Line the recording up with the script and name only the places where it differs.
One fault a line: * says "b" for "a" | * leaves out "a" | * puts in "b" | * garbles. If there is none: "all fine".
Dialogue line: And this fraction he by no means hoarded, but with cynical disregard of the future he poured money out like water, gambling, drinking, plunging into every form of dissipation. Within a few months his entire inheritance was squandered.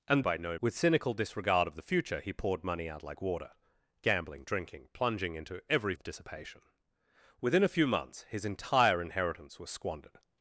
* leaves out "this fraction he"
* leaves out "means hoarded but"
* leaves out "form"